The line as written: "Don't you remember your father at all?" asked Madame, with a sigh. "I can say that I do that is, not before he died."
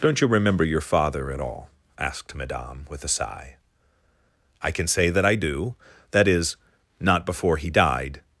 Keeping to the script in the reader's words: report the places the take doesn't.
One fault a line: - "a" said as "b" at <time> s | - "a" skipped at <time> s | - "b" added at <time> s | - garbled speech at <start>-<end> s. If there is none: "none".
none